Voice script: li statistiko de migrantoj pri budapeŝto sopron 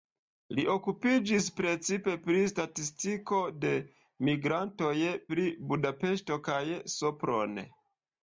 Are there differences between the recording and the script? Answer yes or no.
yes